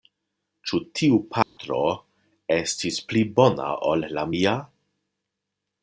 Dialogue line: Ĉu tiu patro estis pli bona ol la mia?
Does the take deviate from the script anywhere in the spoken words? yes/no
no